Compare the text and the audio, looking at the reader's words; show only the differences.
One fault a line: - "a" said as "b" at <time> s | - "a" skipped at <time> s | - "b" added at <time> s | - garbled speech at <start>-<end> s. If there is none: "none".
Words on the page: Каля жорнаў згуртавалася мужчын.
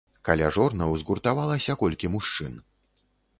- "колькі" added at 1.8 s